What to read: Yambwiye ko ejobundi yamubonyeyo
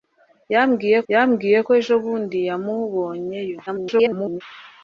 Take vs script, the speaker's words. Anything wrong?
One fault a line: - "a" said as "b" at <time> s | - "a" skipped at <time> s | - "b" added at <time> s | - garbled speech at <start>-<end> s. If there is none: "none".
- "yambwiye" added at 1.1 s
- garbled speech at 3.7-4.4 s